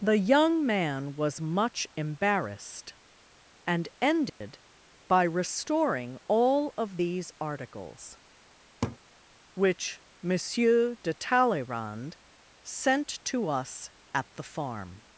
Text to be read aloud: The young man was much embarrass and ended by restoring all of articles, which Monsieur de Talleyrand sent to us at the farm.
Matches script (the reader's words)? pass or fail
fail